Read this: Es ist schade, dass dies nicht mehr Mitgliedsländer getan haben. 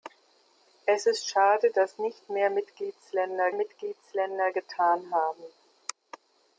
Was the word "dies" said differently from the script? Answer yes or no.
yes